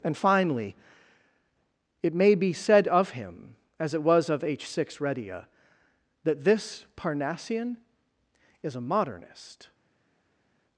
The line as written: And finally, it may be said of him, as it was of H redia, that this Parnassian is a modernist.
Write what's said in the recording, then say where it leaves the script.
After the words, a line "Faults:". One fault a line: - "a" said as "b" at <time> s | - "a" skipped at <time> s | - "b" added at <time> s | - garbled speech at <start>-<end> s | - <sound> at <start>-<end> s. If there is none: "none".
And finally, it may be said of him, as it was of H six redia, that this Parnassian is a modernist.
Faults:
- "six" added at 4.7 s